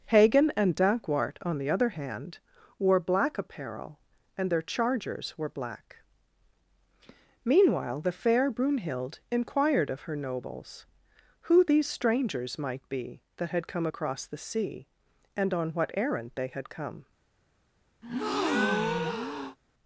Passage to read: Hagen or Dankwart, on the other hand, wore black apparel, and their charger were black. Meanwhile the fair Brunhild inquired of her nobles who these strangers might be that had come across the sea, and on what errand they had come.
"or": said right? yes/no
no